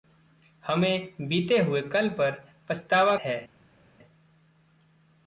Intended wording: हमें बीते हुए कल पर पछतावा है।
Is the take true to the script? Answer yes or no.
yes